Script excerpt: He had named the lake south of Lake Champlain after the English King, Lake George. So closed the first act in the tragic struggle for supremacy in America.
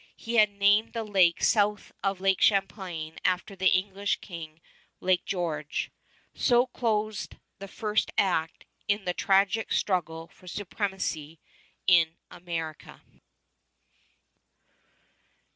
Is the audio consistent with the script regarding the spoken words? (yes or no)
yes